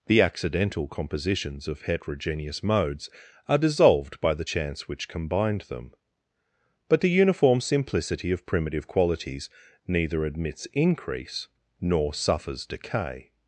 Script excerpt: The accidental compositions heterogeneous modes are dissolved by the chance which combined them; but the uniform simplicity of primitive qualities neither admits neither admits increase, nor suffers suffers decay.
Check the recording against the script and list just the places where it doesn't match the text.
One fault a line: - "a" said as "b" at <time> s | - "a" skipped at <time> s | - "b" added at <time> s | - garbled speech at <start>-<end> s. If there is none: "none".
- "of" added at 1.7 s
- "neither admits" skipped at 10.7 s
- "suffers" skipped at 12.6 s